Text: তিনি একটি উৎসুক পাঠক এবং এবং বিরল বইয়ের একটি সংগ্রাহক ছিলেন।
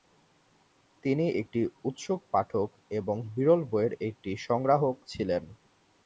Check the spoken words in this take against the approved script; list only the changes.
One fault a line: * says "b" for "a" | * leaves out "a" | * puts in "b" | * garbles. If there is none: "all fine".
* leaves out "এবং"